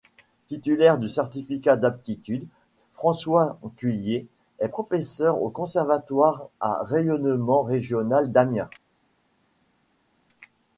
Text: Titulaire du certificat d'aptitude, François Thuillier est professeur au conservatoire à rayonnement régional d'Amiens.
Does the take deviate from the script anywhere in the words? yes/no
no